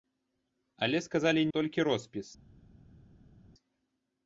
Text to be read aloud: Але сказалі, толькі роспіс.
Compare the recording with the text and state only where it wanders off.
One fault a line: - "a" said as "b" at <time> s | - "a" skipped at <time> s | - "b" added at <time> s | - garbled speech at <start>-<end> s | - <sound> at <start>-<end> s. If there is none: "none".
none